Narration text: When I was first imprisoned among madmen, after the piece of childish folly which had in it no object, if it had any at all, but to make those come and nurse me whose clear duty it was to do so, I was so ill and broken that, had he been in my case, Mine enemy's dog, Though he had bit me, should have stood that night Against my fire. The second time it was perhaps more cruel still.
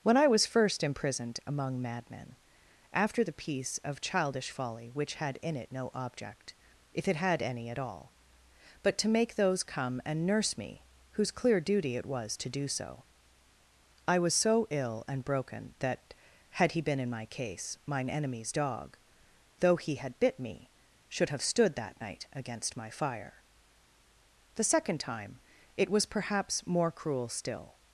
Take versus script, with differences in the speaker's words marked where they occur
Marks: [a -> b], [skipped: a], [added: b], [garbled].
When I was first imprisoned among madmen, after the piece of childish folly which had in it no object, if it had any at all, but to make those come and nurse me whose clear duty it was to do so, I was so ill and broken that, had he been in my case, Mine enemy's dog, Though he had bit me, should have stood that night Against my fire. The second time it was perhaps more cruel still.